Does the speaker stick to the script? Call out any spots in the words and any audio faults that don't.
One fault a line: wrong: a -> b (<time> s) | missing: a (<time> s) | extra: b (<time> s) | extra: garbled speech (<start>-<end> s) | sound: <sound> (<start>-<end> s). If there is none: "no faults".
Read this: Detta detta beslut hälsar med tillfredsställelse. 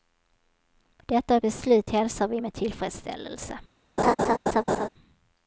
missing: detta (1.4 s)
extra: vi (2.3 s)
sound: laugh (4.0-4.9 s)